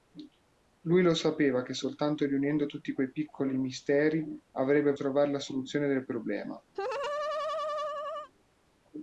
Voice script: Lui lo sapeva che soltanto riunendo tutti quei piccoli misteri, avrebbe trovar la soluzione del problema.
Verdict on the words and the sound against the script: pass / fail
fail